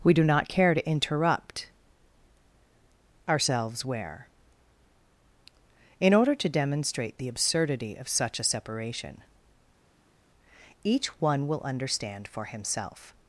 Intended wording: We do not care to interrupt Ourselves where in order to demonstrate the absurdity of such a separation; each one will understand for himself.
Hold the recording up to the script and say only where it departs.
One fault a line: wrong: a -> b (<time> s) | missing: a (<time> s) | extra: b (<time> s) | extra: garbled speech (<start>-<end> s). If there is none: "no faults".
no faults